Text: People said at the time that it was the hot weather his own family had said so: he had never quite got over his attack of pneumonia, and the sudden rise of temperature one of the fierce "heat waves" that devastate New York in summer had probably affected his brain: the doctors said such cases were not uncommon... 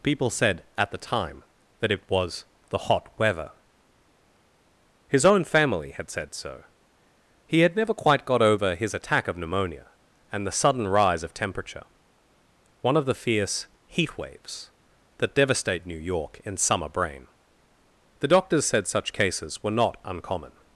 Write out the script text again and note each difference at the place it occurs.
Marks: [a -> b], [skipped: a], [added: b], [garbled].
People said at the time that it was the hot weather his own family had said so: he had never quite got over his attack of pneumonia, and the sudden rise of temperature one of the fierce "heat waves" that devastate New York in summer [skipped: had probably affected his] brain: the doctors said such cases were not uncommon...